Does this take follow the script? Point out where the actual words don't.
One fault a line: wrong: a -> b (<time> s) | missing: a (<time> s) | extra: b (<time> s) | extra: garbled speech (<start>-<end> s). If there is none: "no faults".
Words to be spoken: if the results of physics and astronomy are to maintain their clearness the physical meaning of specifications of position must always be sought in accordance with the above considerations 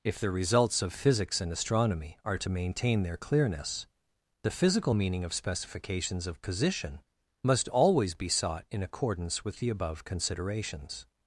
no faults